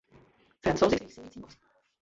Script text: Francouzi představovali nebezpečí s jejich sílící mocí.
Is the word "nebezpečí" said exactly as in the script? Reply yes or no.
no